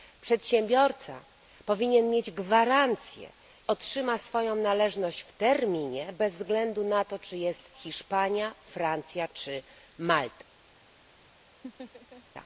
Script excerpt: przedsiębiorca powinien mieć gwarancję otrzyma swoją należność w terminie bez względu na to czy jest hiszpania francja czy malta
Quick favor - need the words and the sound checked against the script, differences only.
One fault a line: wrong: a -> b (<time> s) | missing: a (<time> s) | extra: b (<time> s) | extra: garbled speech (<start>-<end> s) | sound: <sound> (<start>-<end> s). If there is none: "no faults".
sound: laugh (11.6-12.2 s)